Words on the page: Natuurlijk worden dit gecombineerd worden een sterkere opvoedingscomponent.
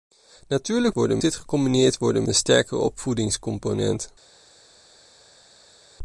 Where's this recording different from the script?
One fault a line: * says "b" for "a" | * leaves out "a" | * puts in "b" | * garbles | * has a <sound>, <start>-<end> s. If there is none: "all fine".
all fine